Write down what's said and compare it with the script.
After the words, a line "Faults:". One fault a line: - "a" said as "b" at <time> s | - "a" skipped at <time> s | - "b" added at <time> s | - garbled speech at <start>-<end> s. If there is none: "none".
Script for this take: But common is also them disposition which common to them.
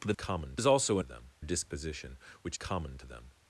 But common is also them disposition which common to them.
Faults:
none